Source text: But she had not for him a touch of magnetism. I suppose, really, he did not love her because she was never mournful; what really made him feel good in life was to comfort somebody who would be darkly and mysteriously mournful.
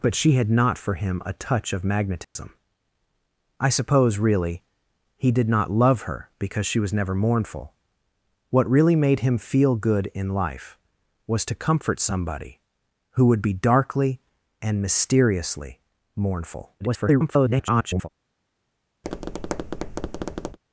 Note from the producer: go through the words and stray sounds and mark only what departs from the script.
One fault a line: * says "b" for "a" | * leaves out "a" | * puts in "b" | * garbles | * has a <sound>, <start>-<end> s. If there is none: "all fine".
* has a dropout, 2.2-2.4 s
* garbles
* has a tap, 19.0-20.6 s